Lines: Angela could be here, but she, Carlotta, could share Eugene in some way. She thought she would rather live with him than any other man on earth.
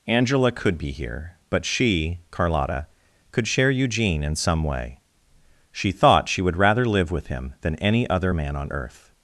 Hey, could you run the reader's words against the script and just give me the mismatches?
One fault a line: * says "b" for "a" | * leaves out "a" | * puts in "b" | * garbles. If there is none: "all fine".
all fine